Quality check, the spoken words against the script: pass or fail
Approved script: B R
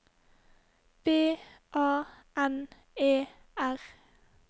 fail